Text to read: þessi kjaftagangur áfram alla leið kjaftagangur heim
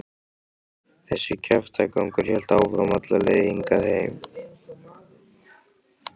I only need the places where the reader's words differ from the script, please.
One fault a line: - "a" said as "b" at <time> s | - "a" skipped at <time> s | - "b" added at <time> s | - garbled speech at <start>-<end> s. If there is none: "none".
- "hélt" added at 2.3 s
- "kjaftagangur" said as "hingað" at 3.5 s